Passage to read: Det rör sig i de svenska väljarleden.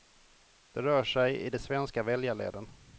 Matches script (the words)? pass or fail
pass